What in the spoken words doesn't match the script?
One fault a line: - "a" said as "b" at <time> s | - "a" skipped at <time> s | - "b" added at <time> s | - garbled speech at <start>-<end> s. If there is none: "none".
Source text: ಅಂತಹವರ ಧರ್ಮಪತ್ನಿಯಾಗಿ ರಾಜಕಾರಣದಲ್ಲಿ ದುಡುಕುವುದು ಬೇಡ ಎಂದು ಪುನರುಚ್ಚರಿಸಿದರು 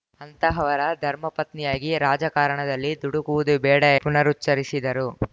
- "ಎಂದು" skipped at 3.8 s